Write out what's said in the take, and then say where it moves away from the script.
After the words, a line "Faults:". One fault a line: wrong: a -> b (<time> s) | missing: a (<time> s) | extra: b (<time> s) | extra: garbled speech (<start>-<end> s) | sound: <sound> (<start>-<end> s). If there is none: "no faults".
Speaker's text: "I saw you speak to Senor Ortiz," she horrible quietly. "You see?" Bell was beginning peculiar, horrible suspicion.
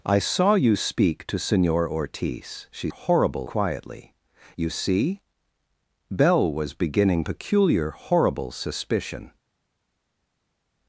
"I saw you speak to Senor Ortiz," she horrible quietly. "You see?" Bell was beginning peculiar, horrible suspicion.
Faults:
no faults